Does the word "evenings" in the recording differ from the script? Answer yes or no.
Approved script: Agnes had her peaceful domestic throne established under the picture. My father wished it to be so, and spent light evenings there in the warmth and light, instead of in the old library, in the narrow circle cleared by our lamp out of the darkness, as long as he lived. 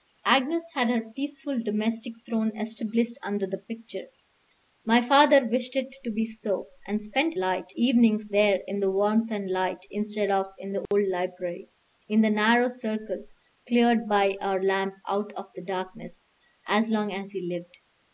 no